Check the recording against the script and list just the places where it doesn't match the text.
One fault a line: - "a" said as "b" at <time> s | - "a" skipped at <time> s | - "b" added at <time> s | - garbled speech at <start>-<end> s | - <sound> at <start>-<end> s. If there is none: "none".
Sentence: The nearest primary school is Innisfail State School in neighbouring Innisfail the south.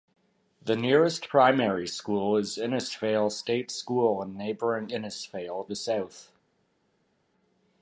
none